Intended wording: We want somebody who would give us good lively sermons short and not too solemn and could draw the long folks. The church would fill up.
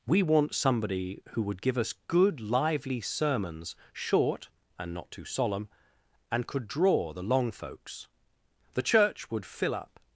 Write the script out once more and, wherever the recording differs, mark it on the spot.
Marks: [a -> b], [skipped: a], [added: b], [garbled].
We want somebody who would give us good lively sermons short and not too solemn and could draw the long folks. The church would fill up.